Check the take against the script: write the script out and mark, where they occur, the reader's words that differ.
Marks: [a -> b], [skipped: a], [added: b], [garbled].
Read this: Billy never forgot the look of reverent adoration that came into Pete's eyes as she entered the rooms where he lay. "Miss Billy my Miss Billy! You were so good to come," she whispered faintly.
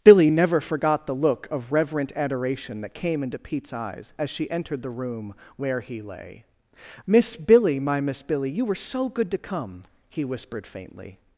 Billy never forgot the look of reverent adoration that came into Pete's eyes as she entered the [rooms -> room] where he lay. "Miss Billy my Miss Billy! You were so good to come," [she -> he] whispered faintly.